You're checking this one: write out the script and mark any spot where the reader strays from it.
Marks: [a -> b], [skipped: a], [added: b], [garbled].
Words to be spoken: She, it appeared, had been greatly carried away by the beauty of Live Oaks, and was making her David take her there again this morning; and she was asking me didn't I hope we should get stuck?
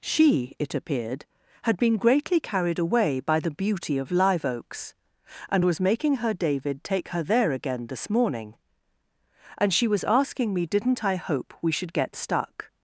She, it appeared, had been greatly carried away by the beauty of Live Oaks, and was making her David take her there again this morning; and she was asking me didn't I hope we should get stuck?